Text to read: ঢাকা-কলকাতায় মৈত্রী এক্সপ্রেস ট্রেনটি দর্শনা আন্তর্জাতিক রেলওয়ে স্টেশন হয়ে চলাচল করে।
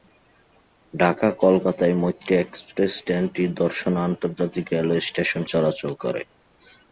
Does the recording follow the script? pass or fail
fail